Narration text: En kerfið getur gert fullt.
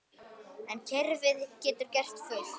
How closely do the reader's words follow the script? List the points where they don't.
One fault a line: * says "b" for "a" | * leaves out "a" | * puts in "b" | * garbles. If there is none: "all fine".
all fine